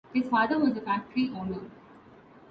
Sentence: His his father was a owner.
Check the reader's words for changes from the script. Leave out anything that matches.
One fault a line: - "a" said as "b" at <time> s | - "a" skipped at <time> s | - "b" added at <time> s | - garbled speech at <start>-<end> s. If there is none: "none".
- "his" skipped at 0.3 s
- "factory" added at 0.8 s